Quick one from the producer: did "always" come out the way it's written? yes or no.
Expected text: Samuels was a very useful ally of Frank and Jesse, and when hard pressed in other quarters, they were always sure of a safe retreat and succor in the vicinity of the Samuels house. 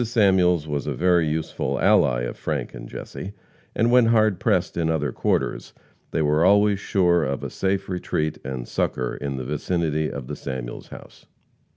yes